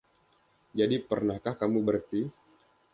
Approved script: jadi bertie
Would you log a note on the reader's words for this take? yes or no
yes